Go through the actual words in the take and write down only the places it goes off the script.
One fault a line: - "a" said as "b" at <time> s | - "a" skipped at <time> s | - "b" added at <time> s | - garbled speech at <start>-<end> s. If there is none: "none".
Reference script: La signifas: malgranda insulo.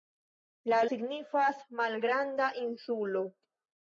none